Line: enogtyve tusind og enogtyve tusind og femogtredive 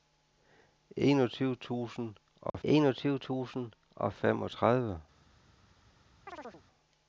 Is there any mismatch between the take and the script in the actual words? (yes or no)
no